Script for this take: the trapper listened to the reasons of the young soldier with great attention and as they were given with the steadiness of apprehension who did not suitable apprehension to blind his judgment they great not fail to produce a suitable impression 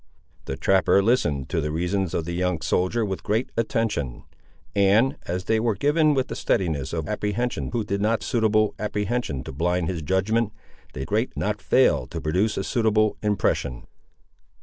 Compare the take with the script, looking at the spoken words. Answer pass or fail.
pass